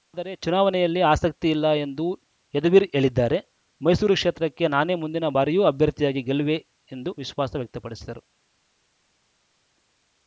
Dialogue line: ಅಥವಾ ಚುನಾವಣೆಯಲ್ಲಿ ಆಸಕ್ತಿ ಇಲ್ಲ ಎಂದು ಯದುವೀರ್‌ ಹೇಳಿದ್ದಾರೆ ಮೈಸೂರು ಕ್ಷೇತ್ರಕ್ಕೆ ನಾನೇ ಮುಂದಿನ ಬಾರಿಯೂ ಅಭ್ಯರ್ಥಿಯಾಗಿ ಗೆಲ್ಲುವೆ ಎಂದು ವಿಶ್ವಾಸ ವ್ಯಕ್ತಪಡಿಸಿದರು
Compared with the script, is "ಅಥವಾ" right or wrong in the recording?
wrong